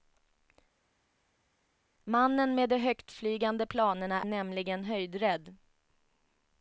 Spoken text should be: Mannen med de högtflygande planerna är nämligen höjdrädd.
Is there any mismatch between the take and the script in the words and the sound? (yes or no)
yes